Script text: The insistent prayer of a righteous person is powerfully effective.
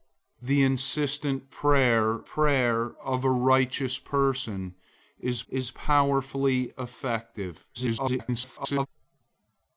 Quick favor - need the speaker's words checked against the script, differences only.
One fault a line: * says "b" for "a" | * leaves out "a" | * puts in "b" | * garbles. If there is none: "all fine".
* puts in "prayer"
* puts in "is"
* garbles